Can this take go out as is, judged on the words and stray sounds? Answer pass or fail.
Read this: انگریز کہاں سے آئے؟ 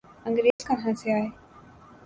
fail